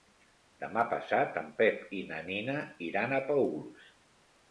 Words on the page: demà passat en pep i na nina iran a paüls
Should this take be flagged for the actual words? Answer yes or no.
no